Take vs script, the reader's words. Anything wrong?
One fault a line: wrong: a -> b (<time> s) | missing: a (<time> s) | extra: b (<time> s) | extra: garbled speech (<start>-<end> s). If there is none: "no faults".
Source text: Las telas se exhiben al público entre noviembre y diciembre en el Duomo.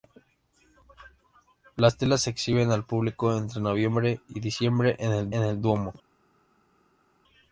extra: en el (5.3 s)